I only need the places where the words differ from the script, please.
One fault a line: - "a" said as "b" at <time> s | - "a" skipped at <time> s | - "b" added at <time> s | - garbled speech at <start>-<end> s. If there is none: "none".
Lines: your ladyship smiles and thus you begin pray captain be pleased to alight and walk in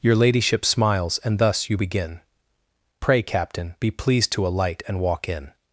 none